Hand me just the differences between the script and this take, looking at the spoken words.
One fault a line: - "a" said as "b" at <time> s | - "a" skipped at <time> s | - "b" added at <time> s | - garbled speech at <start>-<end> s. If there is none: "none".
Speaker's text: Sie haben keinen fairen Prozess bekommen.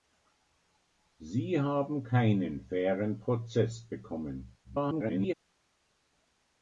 - garbled speech at 4.6-5.3 s